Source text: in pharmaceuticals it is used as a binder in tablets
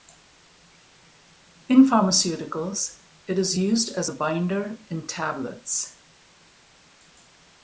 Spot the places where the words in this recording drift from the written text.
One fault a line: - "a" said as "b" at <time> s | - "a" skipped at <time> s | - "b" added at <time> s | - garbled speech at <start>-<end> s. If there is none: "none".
none